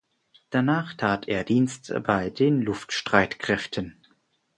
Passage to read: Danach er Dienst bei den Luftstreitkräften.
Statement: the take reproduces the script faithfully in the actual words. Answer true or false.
false